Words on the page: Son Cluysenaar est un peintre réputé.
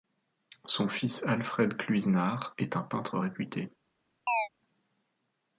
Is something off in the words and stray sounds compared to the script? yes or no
yes